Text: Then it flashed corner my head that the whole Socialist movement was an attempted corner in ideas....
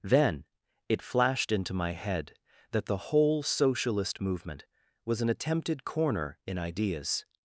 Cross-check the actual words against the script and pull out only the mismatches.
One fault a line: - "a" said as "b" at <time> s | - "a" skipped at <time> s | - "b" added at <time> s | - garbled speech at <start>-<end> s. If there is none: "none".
- "corner" said as "into" at 1.5 s